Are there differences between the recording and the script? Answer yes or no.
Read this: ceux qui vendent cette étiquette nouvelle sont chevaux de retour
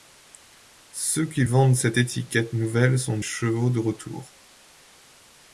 no